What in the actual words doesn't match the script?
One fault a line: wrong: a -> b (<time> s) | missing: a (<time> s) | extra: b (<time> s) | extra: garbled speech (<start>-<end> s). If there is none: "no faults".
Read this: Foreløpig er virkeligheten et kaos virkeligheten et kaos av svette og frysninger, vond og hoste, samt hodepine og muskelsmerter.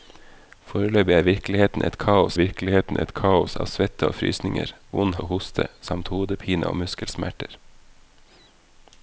no faults